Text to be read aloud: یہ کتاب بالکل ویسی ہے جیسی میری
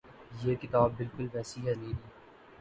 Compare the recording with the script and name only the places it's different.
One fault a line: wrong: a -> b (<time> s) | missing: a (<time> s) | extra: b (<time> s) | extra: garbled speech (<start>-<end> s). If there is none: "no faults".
missing: جیسی (1.7 s)